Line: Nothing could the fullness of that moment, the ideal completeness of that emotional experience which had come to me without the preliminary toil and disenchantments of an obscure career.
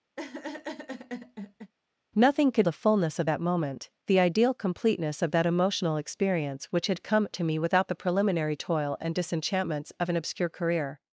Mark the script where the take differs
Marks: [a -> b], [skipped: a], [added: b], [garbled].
Nothing could the fullness of that moment, the ideal completeness of that emotional experience which had come to me without the preliminary toil and disenchantments of an obscure career.